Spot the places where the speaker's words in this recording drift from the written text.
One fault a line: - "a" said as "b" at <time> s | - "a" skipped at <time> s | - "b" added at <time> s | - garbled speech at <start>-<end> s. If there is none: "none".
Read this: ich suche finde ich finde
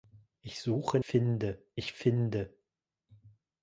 none